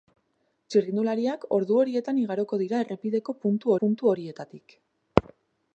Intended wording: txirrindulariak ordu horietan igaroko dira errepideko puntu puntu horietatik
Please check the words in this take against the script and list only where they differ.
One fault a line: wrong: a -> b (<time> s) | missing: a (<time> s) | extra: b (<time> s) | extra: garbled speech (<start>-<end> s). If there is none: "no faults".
no faults